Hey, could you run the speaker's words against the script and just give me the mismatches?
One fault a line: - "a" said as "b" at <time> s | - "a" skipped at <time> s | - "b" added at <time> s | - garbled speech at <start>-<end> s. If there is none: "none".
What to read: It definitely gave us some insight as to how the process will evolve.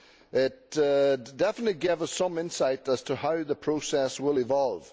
none